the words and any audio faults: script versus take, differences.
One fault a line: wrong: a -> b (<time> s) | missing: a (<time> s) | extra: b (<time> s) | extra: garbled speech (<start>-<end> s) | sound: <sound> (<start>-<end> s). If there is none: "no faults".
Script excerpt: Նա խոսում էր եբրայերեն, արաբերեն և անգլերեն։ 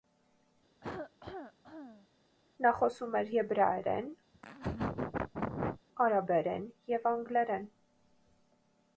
sound: cough (0.8-2.1 s)
sound: laugh (4.3-5.8 s)